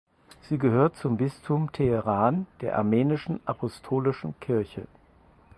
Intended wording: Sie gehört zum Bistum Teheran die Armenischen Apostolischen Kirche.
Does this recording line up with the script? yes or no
no